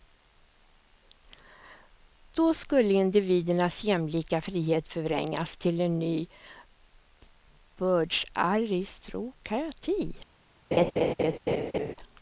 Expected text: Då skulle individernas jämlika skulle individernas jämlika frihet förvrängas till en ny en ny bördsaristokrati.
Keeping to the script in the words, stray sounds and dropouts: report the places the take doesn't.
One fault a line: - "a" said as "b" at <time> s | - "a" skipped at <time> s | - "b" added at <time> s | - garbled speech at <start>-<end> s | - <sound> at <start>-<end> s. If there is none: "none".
- "skulle individernas jämlika" skipped at 4.4 s
- "en ny" skipped at 6.3 s
- laugh at 10.7-11.9 s